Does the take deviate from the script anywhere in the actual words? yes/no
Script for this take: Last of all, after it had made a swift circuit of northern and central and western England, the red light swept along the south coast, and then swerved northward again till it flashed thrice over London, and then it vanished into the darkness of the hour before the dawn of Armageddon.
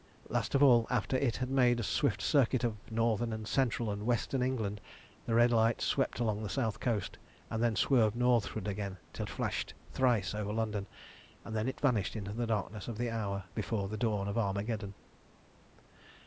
yes